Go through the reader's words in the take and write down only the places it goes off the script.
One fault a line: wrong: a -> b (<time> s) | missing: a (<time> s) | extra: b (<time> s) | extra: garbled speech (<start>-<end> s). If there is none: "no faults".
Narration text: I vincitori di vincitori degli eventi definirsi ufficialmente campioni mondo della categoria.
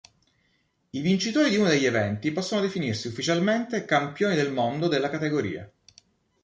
wrong: vincitori -> uno (1.6 s)
extra: possono (2.3 s)
extra: del (4.3 s)